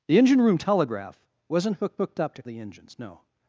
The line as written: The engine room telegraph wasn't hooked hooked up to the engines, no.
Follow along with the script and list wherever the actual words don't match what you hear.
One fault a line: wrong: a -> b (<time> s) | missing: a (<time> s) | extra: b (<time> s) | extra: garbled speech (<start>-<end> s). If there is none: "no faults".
no faults